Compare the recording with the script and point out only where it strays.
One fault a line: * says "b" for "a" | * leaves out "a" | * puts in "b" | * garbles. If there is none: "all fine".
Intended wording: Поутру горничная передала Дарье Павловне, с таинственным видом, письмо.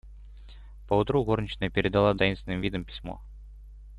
* leaves out "Дарье Павловне с"